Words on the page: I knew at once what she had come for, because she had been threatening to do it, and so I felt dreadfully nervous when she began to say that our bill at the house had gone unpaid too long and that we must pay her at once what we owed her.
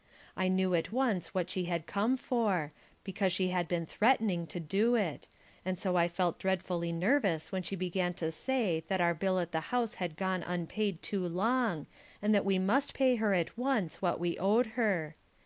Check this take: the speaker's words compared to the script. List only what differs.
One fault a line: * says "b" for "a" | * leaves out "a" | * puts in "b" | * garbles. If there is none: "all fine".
all fine